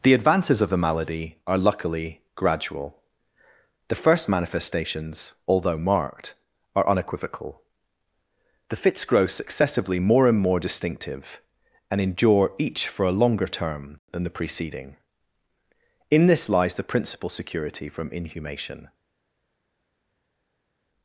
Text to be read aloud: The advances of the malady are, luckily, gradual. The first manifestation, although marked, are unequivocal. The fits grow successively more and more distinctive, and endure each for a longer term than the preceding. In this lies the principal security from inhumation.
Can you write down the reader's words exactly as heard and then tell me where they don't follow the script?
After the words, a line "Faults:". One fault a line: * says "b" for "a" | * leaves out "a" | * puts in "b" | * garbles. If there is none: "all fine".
The advances of the malady are, luckily, gradual. The first manifestations, although marked, are unequivocal. The fits grow successively more and more distinctive, and endure each for a longer term than the preceding. In this lies the principal security from inhumation.
Faults:
* says "manifestations" for "manifestation"